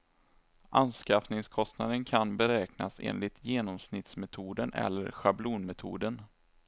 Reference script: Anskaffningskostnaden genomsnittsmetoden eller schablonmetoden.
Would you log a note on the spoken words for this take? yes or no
yes